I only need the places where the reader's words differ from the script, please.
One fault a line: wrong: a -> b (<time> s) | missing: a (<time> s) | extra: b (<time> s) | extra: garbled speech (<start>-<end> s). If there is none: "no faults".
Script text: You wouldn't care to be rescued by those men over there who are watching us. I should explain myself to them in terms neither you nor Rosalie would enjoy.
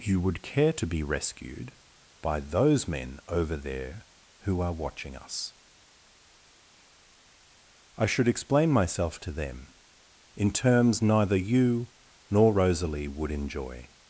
wrong: wouldn't -> would (0.2 s)